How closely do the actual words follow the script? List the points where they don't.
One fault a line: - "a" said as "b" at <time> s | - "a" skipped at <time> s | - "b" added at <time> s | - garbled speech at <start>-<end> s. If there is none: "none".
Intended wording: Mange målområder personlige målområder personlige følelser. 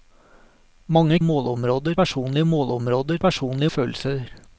none